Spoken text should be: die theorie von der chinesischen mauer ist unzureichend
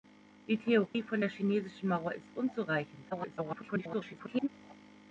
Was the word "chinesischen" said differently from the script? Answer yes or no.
no